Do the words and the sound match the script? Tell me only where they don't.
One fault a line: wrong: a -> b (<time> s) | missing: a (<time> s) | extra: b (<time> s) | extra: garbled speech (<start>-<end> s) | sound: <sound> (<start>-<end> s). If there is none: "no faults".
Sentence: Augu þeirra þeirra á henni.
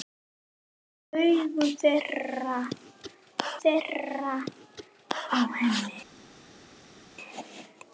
no faults